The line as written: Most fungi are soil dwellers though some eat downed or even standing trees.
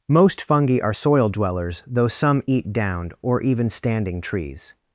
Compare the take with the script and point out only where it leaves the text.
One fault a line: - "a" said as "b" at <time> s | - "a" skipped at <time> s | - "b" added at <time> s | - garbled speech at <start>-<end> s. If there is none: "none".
none